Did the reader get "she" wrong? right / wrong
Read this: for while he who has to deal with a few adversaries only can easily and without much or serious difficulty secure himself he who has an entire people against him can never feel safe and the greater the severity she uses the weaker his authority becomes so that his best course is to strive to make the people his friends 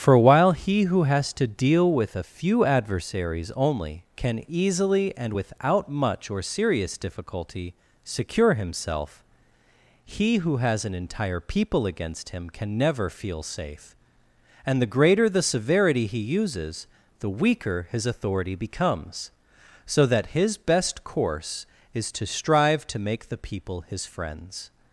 wrong